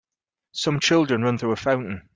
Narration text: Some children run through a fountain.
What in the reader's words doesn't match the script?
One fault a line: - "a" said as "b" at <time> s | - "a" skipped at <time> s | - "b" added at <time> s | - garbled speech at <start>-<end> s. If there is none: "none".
none